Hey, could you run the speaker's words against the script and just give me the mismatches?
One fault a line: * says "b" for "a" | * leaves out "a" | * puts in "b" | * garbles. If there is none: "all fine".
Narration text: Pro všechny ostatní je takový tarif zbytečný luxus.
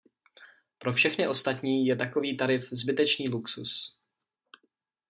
all fine